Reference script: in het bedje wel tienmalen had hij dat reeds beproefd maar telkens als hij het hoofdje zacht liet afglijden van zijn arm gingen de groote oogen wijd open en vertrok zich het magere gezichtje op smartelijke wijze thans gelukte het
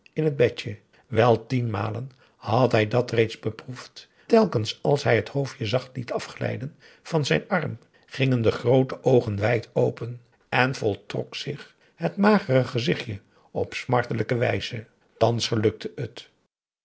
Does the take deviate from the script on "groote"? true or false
false